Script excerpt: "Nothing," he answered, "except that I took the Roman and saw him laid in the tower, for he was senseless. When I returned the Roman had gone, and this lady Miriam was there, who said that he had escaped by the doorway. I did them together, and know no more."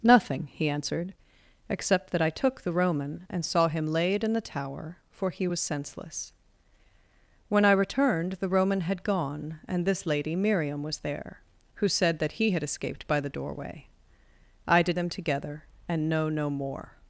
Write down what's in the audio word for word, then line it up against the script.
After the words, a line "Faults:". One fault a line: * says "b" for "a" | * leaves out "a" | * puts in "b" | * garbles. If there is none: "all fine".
"Nothing," he answered, "except that I took the Roman and saw him laid in the tower, for he was senseless. When I returned the Roman had gone, and this lady Miriam was there, who said that he had escaped by the doorway. I did them together, and know no more."
Faults:
all fine